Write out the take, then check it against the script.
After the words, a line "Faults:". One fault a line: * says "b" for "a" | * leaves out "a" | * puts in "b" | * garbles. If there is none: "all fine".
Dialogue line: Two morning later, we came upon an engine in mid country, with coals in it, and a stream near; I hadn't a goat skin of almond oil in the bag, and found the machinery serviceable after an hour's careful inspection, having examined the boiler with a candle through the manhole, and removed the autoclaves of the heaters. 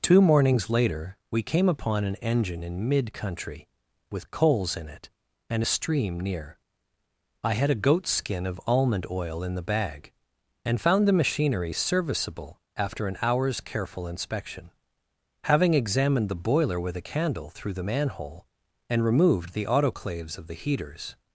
Two mornings later, we came upon an engine in mid country, with coals in it, and a stream near; I had a goat skin of almond oil in the bag, and found the machinery serviceable after an hour's careful inspection, having examined the boiler with a candle through the manhole, and removed the autoclaves of the heaters.
Faults:
* says "mornings" for "morning"
* says "had" for "hadn't"